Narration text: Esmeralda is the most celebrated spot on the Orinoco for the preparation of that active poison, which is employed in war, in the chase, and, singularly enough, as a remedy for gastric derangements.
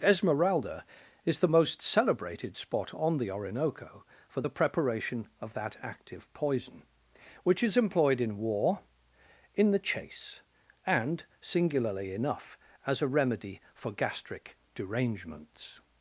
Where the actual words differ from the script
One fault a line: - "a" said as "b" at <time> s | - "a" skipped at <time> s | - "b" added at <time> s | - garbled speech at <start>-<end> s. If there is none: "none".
none